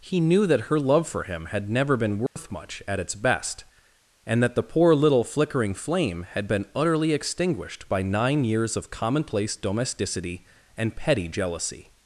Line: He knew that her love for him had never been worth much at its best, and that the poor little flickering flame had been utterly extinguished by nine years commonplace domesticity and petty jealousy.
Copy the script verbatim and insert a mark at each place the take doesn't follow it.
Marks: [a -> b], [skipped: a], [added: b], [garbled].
He knew that her love for him had never been worth much at its best, and that the poor little flickering flame had been utterly extinguished by nine years [added: of] commonplace domesticity and petty jealousy.